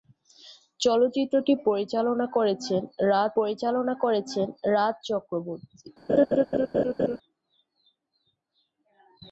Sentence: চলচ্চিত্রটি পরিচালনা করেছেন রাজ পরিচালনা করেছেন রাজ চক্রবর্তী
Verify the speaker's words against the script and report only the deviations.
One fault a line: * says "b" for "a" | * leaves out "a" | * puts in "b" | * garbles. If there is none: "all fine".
all fine